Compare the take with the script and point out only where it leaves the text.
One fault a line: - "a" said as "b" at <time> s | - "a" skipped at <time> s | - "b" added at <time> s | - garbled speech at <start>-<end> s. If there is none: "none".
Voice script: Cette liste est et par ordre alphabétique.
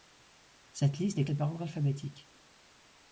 none